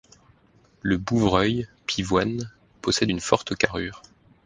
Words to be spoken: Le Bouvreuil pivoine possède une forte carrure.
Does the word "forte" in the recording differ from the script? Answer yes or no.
no